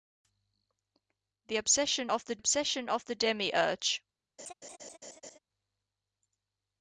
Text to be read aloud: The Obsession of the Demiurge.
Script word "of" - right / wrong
right